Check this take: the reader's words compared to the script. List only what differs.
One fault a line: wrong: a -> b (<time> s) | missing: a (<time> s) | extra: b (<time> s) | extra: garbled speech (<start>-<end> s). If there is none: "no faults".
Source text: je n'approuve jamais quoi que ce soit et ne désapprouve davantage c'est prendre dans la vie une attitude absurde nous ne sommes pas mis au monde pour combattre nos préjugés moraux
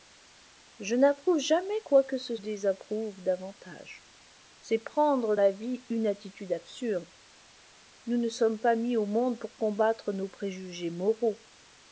missing: soit et ne (2.4 s)
missing: dans (5.4 s)